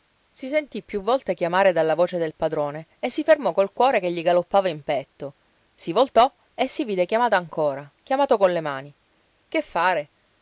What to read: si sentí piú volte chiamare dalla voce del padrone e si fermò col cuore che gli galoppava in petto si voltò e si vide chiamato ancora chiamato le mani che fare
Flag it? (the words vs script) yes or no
yes